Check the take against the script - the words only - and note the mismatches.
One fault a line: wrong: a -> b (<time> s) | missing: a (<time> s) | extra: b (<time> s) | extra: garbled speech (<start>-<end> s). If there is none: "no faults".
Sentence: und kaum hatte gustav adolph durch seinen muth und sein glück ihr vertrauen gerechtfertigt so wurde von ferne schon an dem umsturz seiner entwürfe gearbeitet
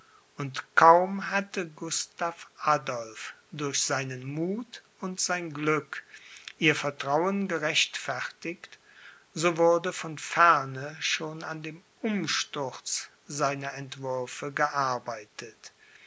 no faults